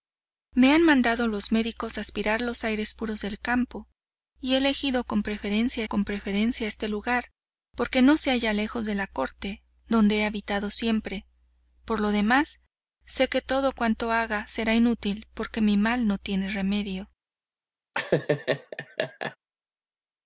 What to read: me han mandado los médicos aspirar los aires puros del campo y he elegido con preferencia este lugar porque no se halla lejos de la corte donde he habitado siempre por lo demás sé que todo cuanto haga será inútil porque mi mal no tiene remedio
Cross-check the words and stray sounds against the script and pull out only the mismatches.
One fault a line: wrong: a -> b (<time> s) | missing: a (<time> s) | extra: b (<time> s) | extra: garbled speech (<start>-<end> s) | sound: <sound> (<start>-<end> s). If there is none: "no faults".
extra: con preferencia (5.8 s)
sound: laugh (17.9-19.4 s)